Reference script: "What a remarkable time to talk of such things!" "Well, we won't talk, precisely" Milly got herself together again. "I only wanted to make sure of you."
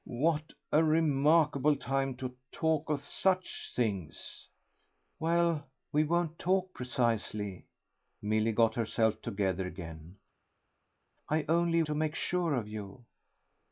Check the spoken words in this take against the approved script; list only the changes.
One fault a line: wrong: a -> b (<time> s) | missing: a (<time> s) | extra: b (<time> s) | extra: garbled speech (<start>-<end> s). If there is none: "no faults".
missing: wanted (11.8 s)